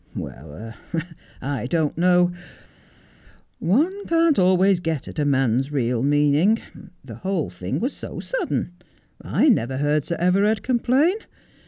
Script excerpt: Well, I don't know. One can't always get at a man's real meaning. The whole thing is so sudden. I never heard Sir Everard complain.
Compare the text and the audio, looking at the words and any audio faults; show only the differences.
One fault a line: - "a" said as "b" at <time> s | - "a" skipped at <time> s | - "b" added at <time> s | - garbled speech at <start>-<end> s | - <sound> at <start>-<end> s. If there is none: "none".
- "is" said as "was" at 7.8 s